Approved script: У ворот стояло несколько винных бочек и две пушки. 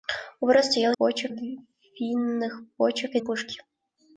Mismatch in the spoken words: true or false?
true